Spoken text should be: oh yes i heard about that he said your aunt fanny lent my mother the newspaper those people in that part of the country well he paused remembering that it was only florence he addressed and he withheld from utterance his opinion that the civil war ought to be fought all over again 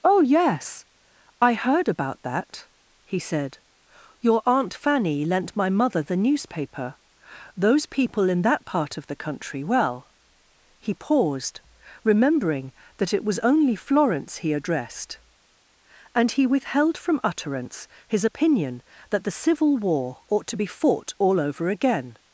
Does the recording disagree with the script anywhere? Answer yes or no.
no